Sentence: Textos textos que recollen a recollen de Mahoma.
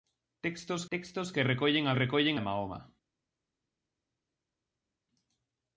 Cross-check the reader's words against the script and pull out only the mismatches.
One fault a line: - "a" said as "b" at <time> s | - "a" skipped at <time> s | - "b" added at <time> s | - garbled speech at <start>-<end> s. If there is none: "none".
none